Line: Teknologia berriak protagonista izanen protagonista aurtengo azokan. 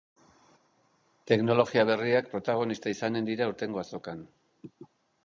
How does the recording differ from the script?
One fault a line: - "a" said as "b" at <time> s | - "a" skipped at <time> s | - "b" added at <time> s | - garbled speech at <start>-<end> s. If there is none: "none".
- "protagonista" said as "dira" at 3.3 s